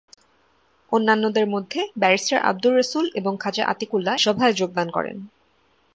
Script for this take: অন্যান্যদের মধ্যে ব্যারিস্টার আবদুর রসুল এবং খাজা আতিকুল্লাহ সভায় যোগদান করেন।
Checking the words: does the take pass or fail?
pass